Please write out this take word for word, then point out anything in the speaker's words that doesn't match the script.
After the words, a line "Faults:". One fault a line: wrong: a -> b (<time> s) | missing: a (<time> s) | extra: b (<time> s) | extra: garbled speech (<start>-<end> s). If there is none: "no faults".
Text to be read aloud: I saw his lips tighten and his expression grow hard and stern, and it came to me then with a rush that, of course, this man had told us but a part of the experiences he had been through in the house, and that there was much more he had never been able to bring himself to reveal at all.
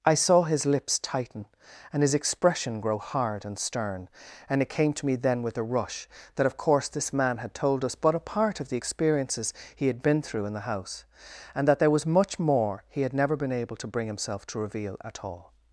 I saw his lips tighten and his expression grow hard and stern, and it came to me then with a rush that, of course, this man had told us but a part of the experiences he had been through in the house, and that there was much more he had never been able to bring himself to reveal at all.
Faults:
no faults